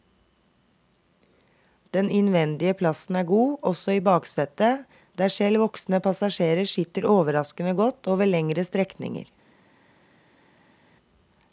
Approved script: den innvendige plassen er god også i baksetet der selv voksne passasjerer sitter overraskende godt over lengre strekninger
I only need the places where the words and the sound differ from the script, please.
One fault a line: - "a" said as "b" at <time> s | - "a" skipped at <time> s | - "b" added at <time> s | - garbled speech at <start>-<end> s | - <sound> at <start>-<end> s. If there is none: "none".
none